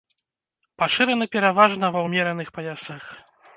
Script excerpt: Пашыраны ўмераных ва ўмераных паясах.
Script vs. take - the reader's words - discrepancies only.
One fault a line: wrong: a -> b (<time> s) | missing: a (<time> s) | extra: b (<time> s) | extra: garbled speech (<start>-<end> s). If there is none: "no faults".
wrong: ўмераных -> пераважна (1.4 s)